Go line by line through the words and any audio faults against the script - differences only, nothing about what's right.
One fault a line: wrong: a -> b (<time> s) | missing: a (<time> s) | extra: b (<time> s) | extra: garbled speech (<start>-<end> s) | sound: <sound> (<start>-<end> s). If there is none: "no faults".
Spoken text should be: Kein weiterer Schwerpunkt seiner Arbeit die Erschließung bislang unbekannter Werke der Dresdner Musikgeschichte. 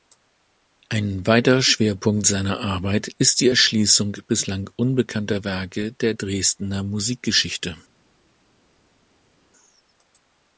wrong: Kein -> Ein (0.9 s)
extra: ist (3.2 s)